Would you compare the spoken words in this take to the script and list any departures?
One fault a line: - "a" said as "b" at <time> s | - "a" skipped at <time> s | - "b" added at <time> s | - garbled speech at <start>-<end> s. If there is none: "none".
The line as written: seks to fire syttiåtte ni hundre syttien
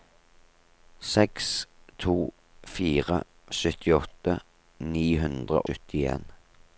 none